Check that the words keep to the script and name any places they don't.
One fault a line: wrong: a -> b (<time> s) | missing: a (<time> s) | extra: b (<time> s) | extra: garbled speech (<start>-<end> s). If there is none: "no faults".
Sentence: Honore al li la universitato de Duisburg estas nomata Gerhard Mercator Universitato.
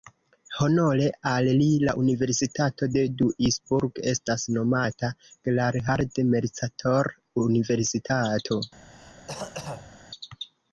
no faults